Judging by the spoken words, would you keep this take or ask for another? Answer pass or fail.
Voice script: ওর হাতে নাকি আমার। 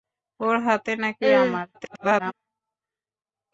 fail